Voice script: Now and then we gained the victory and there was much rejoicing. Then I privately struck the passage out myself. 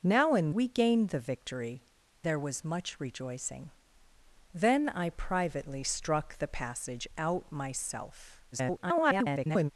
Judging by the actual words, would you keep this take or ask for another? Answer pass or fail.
fail